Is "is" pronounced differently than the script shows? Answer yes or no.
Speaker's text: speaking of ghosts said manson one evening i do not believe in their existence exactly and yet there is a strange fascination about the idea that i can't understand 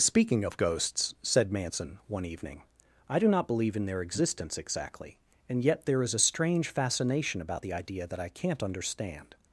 no